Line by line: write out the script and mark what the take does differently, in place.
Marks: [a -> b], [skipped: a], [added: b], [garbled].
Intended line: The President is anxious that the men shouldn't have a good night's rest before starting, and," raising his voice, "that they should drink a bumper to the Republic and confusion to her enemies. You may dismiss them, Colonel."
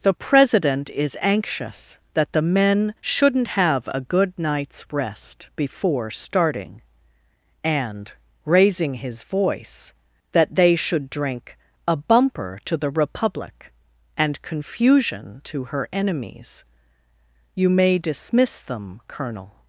The President is anxious that the men shouldn't have a good night's rest before starting, and," raising his voice, "that they should drink a bumper to the Republic and confusion to her enemies. You may dismiss them, Colonel."